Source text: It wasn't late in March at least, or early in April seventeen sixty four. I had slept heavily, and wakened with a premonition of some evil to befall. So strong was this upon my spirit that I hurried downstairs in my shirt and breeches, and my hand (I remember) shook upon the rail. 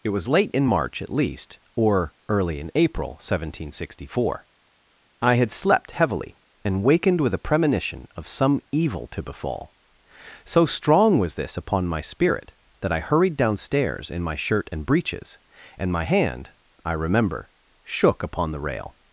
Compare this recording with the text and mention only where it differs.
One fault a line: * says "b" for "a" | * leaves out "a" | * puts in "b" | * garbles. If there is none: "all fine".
* says "was" for "wasn't"